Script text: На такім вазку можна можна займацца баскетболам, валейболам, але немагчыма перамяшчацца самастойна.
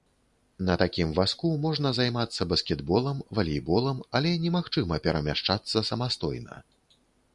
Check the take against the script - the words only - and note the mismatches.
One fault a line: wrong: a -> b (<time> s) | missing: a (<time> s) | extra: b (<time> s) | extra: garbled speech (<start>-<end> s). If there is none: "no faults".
missing: можна (1.9 s)